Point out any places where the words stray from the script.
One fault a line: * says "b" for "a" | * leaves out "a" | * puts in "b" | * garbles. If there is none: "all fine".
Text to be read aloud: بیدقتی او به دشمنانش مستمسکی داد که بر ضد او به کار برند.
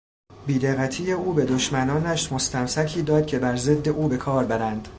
all fine